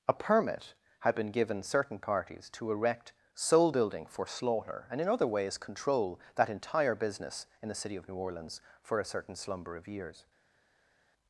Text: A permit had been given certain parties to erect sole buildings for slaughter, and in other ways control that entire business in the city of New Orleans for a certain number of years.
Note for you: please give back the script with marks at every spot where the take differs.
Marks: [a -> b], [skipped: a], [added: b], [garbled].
A permit had been given certain parties to erect sole [buildings -> building] for slaughter, and in other ways control that entire business in the city of New Orleans for a certain [number -> slumber] of years.